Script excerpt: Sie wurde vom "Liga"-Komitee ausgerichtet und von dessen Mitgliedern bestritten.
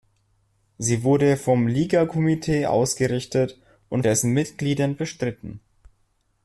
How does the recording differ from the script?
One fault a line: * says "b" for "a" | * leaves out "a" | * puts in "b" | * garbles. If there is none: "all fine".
* leaves out "von"